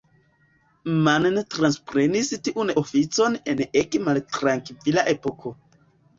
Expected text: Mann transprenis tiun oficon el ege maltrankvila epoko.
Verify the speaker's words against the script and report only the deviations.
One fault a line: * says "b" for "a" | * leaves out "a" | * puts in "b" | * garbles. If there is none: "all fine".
* says "en" for "el"